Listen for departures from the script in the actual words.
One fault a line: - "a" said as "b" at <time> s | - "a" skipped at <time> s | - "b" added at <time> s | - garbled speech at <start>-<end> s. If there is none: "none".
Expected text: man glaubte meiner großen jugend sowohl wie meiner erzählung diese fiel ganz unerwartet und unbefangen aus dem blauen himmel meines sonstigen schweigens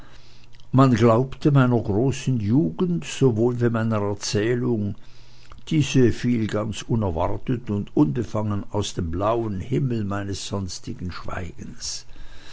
none